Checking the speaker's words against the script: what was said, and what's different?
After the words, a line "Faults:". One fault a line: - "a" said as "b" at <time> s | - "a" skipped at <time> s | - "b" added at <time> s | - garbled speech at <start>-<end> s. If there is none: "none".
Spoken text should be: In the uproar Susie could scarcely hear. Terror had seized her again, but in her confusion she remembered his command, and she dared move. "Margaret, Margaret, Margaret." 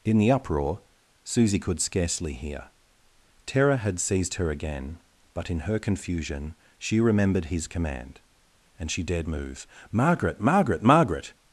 In the uproar Susie could scarcely hear. Terror had seized her again, but in her confusion she remembered his command, and she dared move. "Margaret, Margaret, Margaret."
Faults:
none